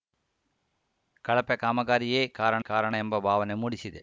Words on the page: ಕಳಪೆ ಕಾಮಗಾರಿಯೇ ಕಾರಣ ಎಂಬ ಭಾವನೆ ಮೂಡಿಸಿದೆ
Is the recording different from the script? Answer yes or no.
yes